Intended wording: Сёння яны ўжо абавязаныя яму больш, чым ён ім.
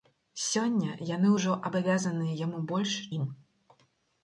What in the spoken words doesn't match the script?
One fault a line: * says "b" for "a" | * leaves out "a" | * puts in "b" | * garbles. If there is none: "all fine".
* leaves out "чым ён"